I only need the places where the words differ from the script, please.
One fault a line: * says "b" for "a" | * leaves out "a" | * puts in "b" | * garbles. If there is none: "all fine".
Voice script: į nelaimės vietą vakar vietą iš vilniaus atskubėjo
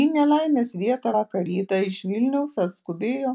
* says "rytą" for "vietą"